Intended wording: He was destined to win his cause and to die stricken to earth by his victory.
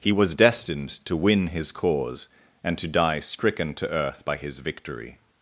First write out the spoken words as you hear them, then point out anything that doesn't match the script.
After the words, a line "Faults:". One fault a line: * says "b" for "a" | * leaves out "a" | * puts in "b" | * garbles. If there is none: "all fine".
He was destined to win his cause and to die stricken to earth by his victory.
Faults:
all fine